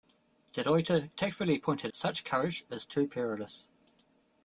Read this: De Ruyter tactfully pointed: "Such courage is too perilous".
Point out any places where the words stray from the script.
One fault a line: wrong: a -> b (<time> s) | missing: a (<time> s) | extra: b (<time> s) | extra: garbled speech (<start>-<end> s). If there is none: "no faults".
no faults